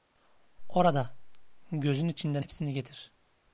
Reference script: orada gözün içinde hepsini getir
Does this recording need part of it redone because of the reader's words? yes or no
no